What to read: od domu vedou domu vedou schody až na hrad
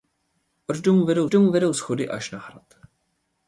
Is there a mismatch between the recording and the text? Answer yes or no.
no